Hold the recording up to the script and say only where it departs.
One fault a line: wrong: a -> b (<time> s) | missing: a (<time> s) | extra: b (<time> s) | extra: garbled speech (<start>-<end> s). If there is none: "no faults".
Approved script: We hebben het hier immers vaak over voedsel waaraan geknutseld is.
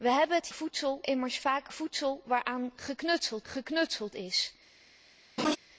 wrong: hier -> voedsel (0.5 s)
missing: over (1.7 s)
extra: geknutseld (3.4 s)